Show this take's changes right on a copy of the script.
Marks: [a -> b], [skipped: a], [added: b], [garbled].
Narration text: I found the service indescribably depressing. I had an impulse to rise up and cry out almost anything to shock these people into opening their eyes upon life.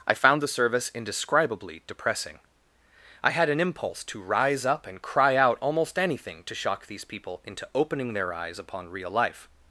I found the service indescribably depressing. I had an impulse to rise up and cry out almost anything to shock these people into opening their eyes upon [added: real] life.